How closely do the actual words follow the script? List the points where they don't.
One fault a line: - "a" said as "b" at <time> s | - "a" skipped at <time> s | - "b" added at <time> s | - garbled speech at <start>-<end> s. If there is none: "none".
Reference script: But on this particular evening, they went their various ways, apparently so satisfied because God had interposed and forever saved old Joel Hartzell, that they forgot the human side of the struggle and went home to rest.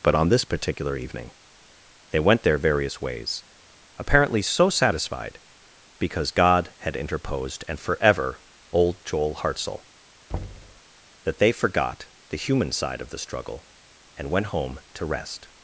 - "saved" skipped at 8.4 s